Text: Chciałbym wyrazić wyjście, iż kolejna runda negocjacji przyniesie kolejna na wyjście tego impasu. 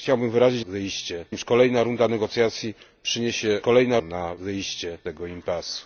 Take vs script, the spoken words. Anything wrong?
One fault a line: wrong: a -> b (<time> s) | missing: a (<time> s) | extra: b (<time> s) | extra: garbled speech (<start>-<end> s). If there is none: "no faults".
no faults